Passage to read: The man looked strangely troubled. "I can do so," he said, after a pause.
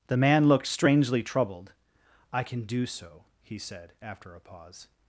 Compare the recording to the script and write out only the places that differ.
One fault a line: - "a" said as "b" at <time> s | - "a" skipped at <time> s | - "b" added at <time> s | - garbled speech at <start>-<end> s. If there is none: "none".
none